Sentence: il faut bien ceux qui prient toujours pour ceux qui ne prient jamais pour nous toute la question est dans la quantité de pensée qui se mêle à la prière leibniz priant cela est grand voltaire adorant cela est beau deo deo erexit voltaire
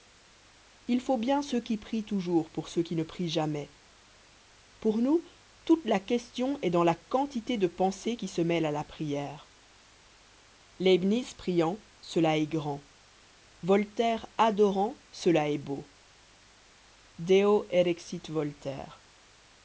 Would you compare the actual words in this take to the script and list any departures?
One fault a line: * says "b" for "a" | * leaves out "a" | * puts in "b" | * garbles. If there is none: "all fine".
* leaves out "deo"